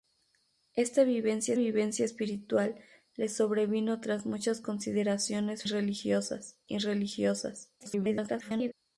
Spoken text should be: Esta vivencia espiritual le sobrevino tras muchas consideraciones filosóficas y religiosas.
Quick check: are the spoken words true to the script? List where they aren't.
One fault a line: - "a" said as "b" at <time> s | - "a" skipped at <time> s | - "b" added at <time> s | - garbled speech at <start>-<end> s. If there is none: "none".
- "vivencia" added at 1.5 s
- "filosóficas" said as "religiosas" at 5.7 s
- garbled speech at 7.8-8.7 s